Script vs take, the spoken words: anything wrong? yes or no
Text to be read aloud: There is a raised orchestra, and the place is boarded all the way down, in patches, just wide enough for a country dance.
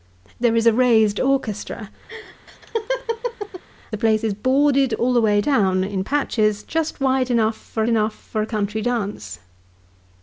yes